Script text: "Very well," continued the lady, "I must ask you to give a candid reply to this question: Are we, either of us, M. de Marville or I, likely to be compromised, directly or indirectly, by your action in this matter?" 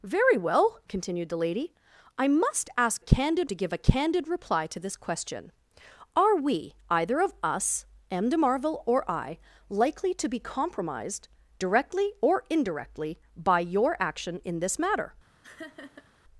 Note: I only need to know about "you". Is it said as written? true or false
false